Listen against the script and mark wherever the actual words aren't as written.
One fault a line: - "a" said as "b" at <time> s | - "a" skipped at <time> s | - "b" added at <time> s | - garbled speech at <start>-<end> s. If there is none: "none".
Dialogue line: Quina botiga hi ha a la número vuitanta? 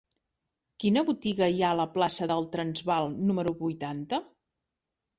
- "plaça del Transvaal" added at 1.9 s